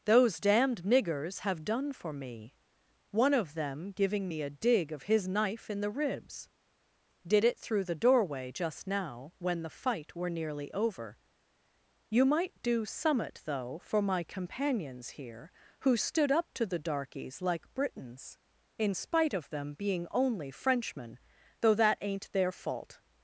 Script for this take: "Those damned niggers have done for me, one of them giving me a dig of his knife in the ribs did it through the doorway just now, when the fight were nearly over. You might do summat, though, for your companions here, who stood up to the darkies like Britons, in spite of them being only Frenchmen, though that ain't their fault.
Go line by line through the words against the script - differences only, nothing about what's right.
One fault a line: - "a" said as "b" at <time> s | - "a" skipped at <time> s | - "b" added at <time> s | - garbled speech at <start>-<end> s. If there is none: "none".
- "your" said as "my" at 14.0 s